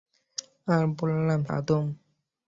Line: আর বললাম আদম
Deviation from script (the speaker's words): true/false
false